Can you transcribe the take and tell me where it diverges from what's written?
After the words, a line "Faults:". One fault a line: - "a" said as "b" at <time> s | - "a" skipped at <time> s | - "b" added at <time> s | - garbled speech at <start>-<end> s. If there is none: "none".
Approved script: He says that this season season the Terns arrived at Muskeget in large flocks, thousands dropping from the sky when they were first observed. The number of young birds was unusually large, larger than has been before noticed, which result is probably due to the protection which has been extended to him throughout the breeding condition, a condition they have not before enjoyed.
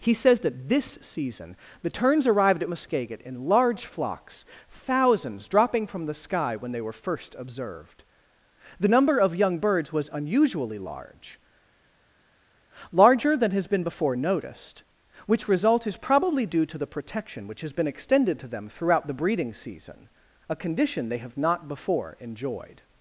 He says that this season the Terns arrived at Muskeget in large flocks, thousands dropping from the sky when they were first observed. The number of young birds was unusually large, larger than has been before noticed, which result is probably due to the protection which has been extended to them throughout the breeding season, a condition they have not before enjoyed.
Faults:
- "season" skipped at 1.6 s
- "him" said as "them" at 18.5 s
- "condition" said as "season" at 19.5 s